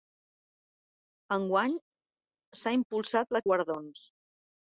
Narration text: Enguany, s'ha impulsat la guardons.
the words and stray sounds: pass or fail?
pass